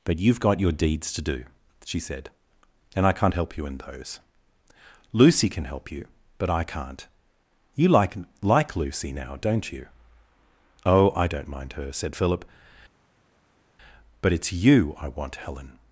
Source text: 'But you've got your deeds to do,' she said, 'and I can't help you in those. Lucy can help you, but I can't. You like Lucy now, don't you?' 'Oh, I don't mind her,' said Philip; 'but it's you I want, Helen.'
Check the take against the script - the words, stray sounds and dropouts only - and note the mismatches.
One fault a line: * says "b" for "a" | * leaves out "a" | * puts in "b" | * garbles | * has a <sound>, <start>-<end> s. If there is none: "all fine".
* puts in "like"